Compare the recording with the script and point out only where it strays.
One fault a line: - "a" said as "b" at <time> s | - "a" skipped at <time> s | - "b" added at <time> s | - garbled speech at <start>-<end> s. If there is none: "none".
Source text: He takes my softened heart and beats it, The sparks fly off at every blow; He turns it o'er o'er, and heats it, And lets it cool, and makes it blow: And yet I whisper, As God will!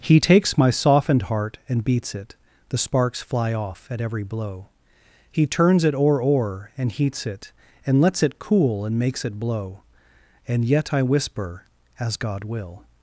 none